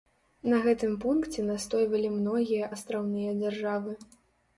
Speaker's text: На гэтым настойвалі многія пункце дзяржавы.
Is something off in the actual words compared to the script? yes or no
yes